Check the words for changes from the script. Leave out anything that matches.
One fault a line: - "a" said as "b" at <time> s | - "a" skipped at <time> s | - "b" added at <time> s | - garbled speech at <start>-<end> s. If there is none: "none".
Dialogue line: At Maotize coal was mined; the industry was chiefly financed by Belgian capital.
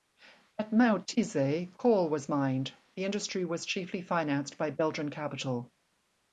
none